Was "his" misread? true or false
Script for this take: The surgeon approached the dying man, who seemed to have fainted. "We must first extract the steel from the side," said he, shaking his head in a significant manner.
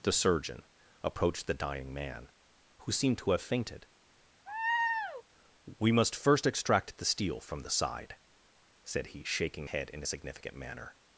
true